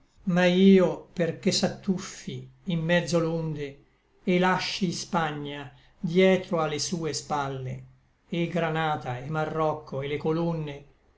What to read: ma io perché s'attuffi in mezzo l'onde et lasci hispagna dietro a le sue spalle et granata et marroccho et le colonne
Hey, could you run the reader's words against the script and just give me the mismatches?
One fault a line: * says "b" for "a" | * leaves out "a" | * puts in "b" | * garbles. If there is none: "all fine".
all fine